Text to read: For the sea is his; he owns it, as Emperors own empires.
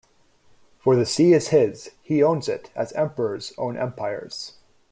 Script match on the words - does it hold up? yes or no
yes